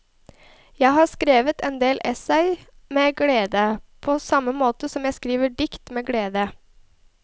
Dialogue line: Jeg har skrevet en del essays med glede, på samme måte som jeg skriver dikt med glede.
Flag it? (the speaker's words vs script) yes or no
no